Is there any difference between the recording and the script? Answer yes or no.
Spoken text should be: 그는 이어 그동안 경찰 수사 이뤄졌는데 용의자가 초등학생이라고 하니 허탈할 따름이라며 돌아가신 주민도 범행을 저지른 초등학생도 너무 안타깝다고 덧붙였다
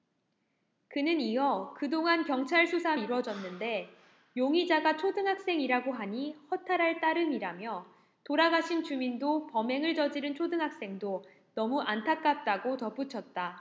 no